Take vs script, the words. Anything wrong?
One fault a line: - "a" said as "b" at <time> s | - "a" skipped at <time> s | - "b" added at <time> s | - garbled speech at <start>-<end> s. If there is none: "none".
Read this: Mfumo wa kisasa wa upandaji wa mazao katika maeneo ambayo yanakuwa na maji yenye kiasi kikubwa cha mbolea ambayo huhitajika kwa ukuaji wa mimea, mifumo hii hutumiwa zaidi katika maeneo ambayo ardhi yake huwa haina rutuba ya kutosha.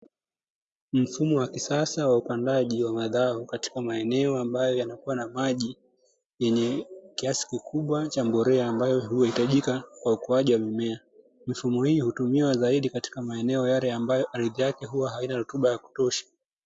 - "yale" added at 13.7 s